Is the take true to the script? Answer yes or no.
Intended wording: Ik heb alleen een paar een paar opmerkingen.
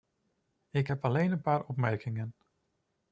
no